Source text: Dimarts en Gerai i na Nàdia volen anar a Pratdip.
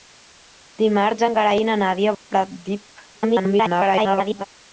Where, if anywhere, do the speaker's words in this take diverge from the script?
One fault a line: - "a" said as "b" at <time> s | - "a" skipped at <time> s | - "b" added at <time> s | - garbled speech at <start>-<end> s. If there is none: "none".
- "volen anar" skipped at 2.2 s
- garbled speech at 3.1-4.5 s